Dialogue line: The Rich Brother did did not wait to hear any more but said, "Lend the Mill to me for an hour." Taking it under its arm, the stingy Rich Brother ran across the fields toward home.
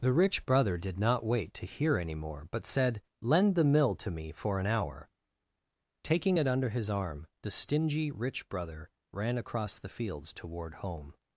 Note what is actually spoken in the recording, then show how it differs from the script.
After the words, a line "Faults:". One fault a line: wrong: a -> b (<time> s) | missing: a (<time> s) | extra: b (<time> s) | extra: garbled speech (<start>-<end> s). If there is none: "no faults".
The Rich Brother did not wait to hear any more but said, "Lend the Mill to me for an hour." Taking it under his arm, the stingy Rich Brother ran across the fields toward home.
Faults:
missing: did (1.0 s)
wrong: its -> his (6.7 s)